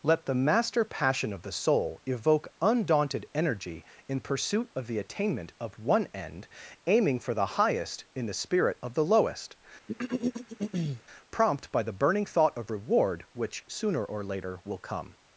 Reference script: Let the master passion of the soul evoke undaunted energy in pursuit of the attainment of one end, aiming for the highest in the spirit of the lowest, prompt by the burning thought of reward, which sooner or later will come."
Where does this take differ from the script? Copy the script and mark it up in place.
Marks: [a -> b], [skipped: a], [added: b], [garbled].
Let the master passion of the soul evoke undaunted energy in pursuit of the attainment of one end, aiming for the highest in the spirit of the lowest, prompt by the burning thought of reward, which sooner or later will come."